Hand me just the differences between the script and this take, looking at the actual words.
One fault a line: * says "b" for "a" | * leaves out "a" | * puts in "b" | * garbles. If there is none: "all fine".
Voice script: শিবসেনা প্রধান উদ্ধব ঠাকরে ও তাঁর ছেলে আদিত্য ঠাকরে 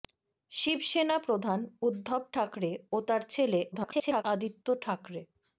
* garbles